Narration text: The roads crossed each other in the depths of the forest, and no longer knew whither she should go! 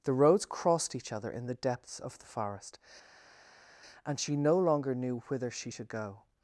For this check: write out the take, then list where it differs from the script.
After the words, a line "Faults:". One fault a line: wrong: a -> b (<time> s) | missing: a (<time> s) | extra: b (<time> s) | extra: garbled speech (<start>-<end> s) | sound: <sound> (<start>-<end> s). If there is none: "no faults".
The roads crossed each other in the depths of the forest, and she no longer knew whither she should go!
Faults:
extra: she (4.2 s)